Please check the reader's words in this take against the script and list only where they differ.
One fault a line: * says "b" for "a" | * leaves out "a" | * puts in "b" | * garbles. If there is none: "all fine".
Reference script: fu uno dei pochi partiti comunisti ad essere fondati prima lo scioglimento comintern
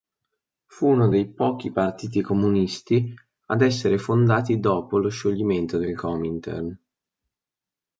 * says "dopo" for "prima"
* puts in "del"